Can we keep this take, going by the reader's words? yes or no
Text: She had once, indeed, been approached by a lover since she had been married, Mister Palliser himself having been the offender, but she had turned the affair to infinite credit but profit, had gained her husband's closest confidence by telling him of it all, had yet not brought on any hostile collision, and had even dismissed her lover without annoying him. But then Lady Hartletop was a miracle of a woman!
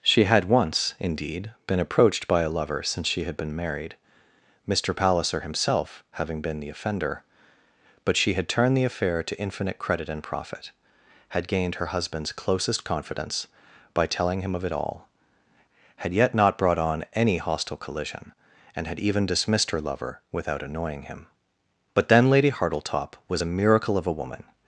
no